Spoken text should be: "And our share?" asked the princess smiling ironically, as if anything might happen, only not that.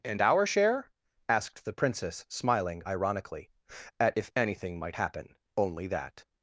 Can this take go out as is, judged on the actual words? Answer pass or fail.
fail